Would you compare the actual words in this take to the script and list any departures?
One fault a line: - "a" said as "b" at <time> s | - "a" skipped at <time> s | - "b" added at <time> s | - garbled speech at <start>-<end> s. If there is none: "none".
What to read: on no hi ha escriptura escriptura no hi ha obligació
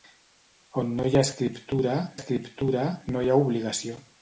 none